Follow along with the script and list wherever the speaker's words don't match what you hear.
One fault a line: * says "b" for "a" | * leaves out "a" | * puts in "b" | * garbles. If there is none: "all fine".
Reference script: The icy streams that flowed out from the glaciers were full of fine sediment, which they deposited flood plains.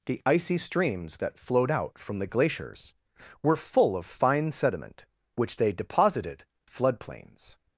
all fine